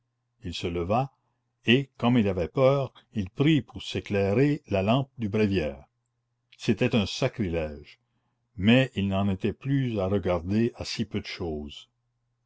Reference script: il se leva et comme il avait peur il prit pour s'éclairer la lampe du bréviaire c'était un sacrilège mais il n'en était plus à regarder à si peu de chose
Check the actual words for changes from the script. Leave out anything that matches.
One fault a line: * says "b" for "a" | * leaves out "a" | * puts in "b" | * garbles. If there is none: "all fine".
all fine